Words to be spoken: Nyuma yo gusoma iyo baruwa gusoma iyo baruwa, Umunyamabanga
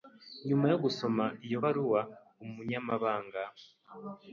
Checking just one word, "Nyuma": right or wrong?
right